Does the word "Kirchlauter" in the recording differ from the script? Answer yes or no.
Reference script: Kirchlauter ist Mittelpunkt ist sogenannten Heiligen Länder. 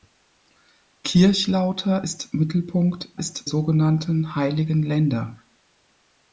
no